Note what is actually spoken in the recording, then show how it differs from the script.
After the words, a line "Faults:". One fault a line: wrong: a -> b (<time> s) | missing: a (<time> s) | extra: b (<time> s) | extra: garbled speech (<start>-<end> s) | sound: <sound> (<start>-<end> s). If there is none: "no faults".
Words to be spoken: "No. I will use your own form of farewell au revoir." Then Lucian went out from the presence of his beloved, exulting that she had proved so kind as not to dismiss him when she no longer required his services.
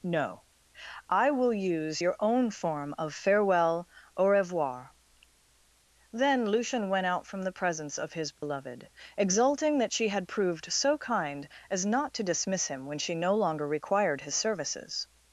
"No. I will use your own form of farewell au revoir." Then Lucian went out from the presence of his beloved, exulting that she had proved so kind as not to dismiss him when she no longer required his services.
Faults:
sound: dropout (8.4-8.4 s)